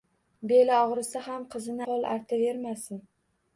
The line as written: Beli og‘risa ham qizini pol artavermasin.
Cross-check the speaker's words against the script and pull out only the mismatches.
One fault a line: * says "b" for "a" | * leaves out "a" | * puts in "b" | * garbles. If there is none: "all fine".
all fine